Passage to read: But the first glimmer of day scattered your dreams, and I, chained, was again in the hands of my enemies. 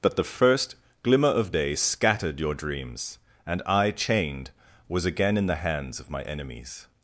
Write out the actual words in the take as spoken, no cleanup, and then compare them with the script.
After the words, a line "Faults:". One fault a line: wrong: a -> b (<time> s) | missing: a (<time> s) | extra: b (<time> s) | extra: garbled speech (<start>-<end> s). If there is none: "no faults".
But the first glimmer of day scattered your dreams, and I, chained, was again in the hands of my enemies.
Faults:
no faults